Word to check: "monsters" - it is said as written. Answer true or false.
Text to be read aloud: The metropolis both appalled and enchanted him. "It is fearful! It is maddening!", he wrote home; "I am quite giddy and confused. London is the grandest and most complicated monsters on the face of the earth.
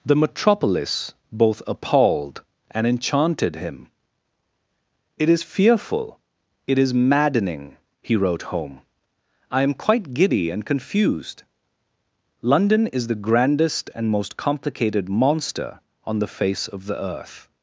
false